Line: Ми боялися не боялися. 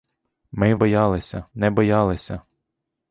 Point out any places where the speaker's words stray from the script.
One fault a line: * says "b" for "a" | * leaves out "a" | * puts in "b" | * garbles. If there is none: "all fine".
all fine